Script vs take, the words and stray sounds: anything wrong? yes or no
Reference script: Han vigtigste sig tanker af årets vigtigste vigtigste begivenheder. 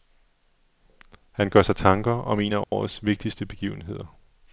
yes